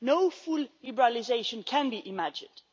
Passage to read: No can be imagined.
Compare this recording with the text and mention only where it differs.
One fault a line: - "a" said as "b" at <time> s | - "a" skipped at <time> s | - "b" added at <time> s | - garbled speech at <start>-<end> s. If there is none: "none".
- "full liberalisation" added at 0.3 s